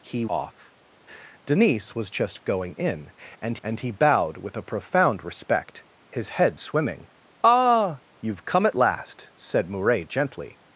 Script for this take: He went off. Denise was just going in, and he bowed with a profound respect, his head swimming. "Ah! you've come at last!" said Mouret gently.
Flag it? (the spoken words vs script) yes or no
yes